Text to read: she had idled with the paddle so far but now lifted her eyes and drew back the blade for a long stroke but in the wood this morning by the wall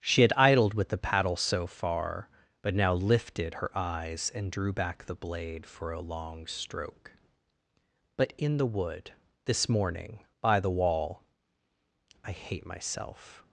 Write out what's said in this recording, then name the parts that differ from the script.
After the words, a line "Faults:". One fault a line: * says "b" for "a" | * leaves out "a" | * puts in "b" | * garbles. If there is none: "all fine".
she had idled with the paddle so far but now lifted her eyes and drew back the blade for a long stroke but in the wood this morning by the wall i hate myself
Faults:
* puts in "i hate myself"